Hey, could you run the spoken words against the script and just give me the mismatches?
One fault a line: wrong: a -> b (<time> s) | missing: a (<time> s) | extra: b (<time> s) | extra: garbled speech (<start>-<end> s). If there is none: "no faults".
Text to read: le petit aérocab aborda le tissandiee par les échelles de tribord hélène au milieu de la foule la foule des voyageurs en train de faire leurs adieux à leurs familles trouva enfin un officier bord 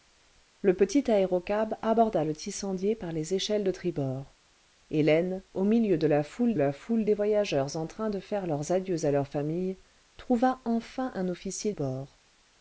no faults